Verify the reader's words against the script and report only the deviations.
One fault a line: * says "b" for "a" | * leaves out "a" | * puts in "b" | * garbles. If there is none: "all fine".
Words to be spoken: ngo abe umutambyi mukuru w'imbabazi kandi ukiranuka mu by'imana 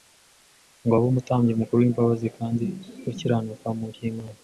all fine